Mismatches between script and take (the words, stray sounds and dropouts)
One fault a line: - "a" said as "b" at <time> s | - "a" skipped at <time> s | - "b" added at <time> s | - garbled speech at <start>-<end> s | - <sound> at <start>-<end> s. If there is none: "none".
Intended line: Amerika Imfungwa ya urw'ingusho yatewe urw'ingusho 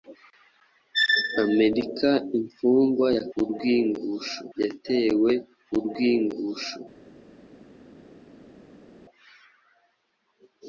none